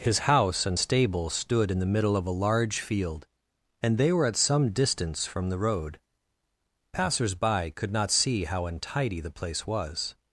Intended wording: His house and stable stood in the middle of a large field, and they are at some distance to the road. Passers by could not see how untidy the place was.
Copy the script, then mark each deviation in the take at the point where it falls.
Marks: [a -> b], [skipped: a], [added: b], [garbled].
His house and stable stood in the middle of a large field, and they [are -> were] at some distance [to -> from] the road. Passers by could not see how untidy the place was.